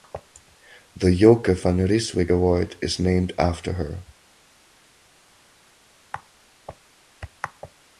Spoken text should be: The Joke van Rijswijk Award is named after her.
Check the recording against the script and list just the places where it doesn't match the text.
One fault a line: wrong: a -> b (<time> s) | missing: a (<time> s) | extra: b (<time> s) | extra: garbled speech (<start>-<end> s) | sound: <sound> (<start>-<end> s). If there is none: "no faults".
no faults